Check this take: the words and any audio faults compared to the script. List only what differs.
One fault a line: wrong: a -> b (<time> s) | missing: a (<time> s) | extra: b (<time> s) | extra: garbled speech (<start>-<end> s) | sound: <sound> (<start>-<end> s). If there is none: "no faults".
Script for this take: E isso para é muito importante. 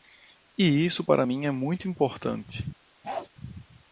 extra: mim (1.2 s)
sound: bark (3.0-3.3 s)